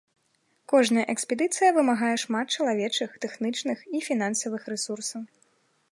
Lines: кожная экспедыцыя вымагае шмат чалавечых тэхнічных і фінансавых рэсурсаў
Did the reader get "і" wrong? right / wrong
right